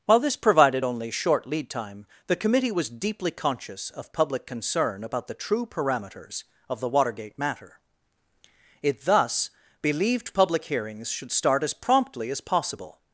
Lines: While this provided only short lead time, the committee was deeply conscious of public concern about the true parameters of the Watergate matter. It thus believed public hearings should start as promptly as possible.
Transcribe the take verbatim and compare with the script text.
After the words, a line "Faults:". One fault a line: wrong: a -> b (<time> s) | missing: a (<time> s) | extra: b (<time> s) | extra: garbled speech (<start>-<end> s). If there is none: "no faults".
While this provided only short lead time, the committee was deeply conscious of public concern about the true parameters of the Watergate matter. It thus believed public hearings should start as promptly as possible.
Faults:
no faults